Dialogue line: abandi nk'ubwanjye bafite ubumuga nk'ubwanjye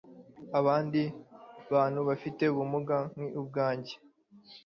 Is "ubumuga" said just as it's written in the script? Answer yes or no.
yes